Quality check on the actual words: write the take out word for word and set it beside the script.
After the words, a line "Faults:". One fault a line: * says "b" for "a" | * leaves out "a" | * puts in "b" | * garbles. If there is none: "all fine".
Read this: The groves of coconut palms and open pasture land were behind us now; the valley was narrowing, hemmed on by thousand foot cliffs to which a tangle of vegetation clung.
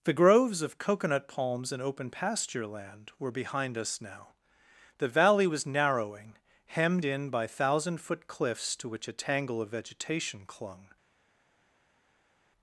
The groves of coconut palms and open pasture land were behind us now; the valley was narrowing, hemmed in by thousand foot cliffs to which a tangle of vegetation clung.
Faults:
* says "in" for "on"